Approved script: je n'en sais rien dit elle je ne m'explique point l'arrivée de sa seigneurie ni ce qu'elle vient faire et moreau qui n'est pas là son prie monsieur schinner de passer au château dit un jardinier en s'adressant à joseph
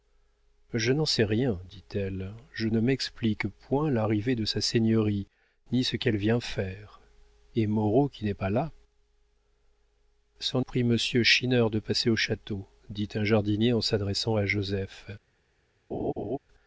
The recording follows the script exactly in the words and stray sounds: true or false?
false